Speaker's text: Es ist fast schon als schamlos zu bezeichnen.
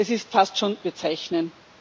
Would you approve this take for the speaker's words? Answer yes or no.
no